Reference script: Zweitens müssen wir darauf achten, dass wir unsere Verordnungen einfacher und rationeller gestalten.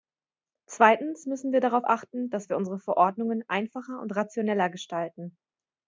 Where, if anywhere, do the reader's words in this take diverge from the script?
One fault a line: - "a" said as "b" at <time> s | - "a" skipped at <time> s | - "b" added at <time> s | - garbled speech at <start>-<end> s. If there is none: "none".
none